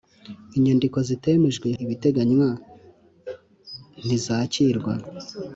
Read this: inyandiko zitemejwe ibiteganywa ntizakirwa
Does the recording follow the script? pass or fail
pass